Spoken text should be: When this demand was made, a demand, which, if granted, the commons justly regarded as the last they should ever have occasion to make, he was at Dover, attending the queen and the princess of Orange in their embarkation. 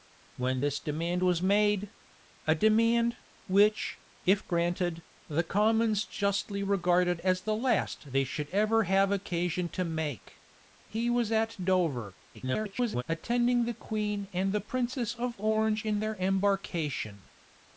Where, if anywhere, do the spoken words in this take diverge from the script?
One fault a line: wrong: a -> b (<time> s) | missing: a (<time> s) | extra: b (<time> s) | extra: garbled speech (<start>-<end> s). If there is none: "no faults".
extra: garbled speech (12.3-13.0 s)